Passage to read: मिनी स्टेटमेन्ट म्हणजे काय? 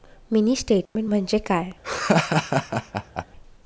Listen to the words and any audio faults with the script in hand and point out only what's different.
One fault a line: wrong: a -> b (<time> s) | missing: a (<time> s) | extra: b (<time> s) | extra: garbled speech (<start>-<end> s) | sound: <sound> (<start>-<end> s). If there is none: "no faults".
sound: dropout (0.9-1.0 s)
sound: laugh (1.8-3.2 s)